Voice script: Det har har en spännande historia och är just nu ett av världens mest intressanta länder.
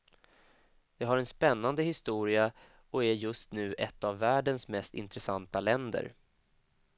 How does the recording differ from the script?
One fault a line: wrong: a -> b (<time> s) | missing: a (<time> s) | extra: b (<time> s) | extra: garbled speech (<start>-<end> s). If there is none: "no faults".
missing: har (1.2 s)